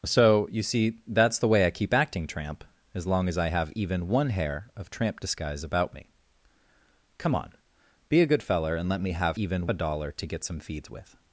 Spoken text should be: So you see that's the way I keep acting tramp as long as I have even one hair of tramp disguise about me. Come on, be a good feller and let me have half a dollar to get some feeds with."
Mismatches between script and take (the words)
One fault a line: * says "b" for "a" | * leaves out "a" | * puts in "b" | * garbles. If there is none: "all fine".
* says "even" for "half"